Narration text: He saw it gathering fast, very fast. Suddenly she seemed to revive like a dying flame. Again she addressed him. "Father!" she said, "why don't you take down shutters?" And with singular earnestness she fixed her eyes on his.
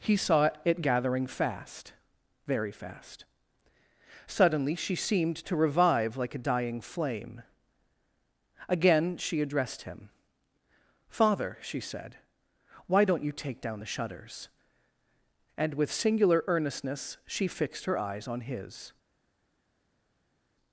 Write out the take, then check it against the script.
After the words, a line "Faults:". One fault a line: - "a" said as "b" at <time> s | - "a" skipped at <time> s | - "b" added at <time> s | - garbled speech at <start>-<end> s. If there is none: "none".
He saw it gathering fast, very fast. Suddenly she seemed to revive like a dying flame. Again she addressed him. "Father!" she said, "why don't you take down the shutters?" And with singular earnestness she fixed her eyes on his.
Faults:
- "the" added at 13.8 s